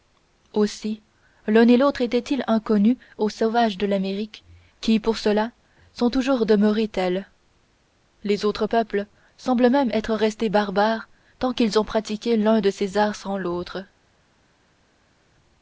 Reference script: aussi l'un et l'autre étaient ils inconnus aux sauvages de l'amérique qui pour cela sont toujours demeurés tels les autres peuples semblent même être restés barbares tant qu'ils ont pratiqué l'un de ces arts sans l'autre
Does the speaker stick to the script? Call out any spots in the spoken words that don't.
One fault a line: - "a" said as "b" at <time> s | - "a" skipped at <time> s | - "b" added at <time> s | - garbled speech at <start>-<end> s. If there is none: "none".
none